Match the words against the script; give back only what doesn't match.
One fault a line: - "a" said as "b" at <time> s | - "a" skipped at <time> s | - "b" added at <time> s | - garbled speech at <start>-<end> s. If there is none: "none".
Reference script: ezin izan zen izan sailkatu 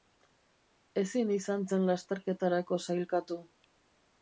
- "izan" said as "lasterketarako" at 1.9 s